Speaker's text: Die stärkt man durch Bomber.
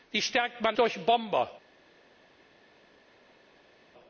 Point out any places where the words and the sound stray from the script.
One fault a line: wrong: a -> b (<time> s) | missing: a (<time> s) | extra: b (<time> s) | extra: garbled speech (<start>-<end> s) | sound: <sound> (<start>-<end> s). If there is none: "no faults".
no faults